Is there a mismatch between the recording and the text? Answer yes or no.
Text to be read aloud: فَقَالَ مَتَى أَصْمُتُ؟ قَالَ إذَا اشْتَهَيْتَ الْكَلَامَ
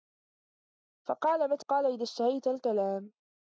yes